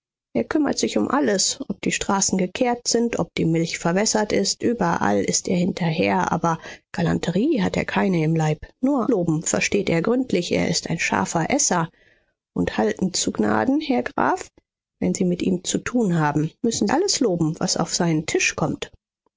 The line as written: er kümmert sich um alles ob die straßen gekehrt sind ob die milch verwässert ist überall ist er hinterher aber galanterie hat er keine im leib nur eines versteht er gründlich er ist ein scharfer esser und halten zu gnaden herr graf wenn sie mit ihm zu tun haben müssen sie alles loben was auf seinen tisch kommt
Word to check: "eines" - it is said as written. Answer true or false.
false